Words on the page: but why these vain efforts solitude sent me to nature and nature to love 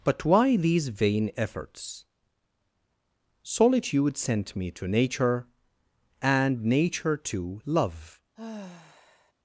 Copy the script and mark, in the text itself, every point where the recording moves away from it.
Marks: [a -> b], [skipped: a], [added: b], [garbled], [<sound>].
but why these vain efforts solitude sent me to nature and nature to love [sigh]